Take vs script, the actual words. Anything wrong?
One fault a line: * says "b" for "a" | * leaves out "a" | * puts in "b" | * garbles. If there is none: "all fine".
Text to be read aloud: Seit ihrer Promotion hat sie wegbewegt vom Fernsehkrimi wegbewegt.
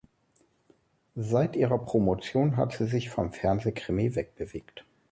* says "sich" for "wegbewegt"